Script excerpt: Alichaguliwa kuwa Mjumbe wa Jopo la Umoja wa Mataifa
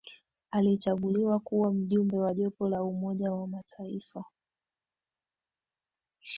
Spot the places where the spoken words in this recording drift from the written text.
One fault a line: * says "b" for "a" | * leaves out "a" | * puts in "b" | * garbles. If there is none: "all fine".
all fine